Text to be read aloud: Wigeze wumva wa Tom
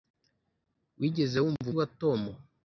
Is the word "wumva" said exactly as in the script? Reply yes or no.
yes